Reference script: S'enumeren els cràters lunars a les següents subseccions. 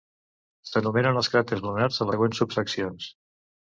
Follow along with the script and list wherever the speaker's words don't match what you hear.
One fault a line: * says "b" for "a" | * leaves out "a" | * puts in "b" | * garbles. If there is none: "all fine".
* leaves out "les"